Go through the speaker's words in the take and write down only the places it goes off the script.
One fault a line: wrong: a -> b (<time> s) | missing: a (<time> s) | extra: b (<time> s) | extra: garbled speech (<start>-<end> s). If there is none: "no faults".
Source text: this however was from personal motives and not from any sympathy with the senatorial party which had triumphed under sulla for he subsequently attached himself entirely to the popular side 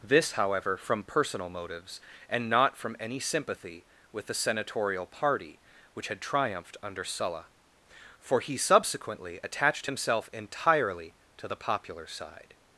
missing: was (0.8 s)